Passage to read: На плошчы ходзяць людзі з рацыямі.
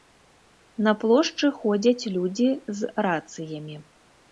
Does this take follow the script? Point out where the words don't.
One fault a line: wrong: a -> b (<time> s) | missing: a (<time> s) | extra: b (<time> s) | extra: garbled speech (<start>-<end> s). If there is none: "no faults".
no faults